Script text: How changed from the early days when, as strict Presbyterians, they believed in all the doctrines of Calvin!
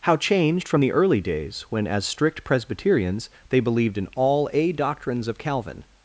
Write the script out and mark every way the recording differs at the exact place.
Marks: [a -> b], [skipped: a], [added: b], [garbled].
How changed from the early days when, as strict Presbyterians, they believed in all [the -> a] doctrines of Calvin!